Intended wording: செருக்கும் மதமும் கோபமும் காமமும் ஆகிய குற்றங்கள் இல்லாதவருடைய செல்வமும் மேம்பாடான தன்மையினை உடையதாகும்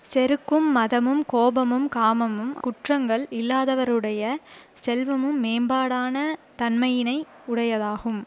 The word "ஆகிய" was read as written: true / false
false